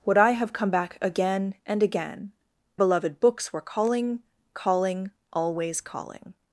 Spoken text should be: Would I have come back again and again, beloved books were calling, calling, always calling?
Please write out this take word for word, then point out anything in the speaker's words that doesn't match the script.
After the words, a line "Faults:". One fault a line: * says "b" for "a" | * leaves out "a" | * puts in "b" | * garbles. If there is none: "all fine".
Would I have come back again and again, beloved books were calling, calling, always calling?
Faults:
all fine